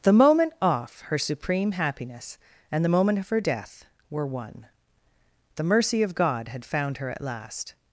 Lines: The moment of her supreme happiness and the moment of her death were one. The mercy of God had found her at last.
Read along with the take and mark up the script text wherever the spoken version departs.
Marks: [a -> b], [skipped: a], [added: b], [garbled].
The moment [of -> off] her supreme happiness and the moment of her death were one. The mercy of God had found her at last.